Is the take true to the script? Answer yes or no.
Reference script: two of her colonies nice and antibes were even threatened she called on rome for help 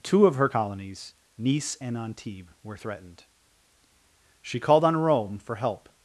no